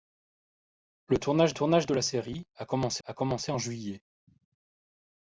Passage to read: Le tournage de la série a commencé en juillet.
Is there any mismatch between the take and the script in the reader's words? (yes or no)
yes